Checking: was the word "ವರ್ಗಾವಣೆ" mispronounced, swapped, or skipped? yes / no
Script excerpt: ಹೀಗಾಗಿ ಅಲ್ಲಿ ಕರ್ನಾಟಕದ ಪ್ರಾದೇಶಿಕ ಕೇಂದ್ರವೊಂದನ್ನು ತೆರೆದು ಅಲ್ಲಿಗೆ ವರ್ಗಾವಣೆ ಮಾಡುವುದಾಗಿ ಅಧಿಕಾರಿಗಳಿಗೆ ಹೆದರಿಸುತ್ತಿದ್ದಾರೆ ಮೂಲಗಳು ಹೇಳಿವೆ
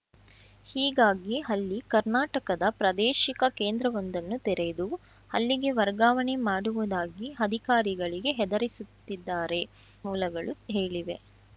no